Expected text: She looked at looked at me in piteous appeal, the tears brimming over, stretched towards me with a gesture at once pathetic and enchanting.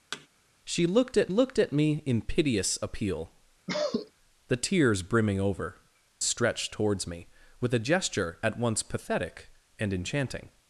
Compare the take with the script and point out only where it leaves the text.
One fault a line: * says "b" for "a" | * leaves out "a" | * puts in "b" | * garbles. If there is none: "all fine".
all fine